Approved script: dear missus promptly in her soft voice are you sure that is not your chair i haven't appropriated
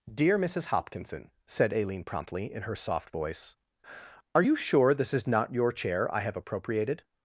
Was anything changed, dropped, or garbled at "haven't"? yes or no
yes